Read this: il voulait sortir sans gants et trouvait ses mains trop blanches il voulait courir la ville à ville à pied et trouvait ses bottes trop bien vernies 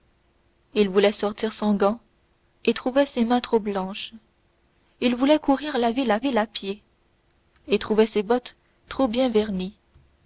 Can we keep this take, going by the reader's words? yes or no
yes